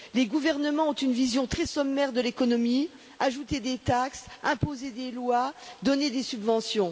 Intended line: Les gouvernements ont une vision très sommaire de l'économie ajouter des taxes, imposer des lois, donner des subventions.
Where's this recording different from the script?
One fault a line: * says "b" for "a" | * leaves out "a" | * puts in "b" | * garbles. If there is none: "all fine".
all fine